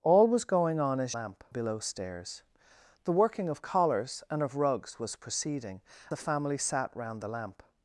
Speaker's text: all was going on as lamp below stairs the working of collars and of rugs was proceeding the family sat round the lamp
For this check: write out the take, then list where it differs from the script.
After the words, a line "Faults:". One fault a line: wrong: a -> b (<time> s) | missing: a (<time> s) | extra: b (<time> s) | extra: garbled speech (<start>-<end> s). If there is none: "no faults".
all was going on as lamp below stairs the working of collars and of rugs was proceeding the family sat round the lamp
Faults:
no faults